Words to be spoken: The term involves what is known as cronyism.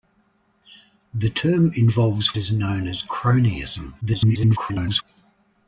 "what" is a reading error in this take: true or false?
true